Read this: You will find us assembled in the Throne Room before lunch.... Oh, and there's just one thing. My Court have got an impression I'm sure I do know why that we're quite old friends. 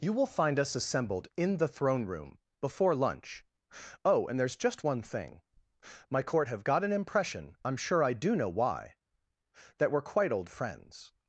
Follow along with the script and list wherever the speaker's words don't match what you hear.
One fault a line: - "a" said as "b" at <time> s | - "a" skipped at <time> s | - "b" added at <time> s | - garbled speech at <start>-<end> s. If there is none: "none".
none